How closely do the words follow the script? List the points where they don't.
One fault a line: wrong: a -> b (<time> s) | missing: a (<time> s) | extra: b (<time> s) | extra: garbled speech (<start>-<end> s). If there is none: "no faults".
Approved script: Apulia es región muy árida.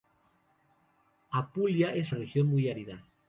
no faults